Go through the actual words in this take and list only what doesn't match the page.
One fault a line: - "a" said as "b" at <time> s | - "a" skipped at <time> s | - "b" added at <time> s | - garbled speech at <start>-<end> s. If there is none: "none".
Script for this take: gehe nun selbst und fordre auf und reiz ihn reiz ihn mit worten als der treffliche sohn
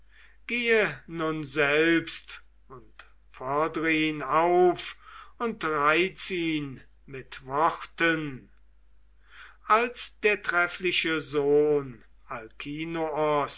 - "ihn" added at 3.9 s
- "reiz ihn" skipped at 6.8 s